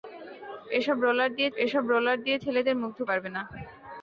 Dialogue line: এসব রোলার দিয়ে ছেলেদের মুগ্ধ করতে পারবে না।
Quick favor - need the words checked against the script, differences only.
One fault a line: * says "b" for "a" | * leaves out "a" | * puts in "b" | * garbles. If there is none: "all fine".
* puts in "এসব রোলার দিয়ে"
* leaves out "করতে"